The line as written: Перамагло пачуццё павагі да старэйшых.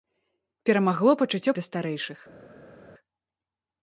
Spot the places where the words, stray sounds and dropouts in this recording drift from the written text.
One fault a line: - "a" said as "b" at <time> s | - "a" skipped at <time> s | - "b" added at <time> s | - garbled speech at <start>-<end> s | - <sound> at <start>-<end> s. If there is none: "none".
- "павагі" skipped at 1.5 s